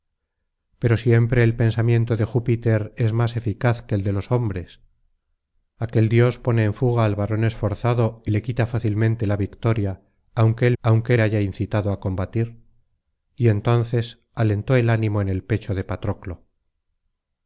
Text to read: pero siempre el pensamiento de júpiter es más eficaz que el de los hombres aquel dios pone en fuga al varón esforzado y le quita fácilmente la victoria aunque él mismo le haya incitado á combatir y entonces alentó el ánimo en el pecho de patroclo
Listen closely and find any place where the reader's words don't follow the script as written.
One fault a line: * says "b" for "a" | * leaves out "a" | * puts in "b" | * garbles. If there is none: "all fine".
* says "aunque" for "mismo"